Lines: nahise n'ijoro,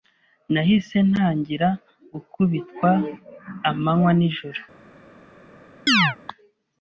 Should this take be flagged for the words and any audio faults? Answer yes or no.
yes